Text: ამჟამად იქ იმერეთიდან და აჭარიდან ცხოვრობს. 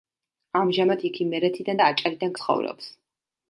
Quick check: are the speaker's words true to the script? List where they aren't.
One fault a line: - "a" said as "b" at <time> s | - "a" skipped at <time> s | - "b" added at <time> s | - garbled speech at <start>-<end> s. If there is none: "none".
none